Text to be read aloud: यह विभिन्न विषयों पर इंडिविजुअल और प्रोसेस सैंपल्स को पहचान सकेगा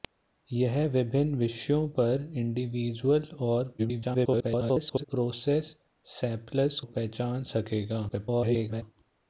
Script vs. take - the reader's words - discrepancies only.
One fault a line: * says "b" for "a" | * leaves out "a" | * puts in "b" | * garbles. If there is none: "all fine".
* garbles
* leaves out "को"
* garbles